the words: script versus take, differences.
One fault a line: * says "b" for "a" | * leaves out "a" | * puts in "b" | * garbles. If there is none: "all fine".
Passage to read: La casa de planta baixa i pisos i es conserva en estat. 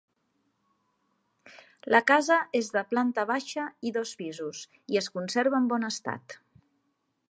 * puts in "és"
* puts in "dos"
* puts in "bon"